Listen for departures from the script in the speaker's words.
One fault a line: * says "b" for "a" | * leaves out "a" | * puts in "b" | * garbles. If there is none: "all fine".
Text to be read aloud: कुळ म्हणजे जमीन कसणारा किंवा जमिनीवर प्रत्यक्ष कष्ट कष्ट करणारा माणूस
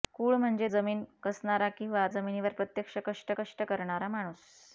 all fine